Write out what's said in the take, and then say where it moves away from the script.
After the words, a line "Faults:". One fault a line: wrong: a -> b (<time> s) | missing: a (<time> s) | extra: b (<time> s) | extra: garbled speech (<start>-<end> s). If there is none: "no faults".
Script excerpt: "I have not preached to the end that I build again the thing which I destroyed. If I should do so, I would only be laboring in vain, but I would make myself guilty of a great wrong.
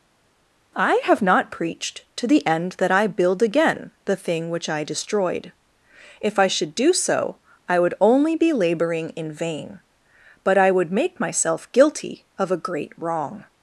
"I have not preached to the end that I build again the thing which I destroyed. If I should do so, I would only be laboring in vain, but I would make myself guilty of a great wrong.
Faults:
no faults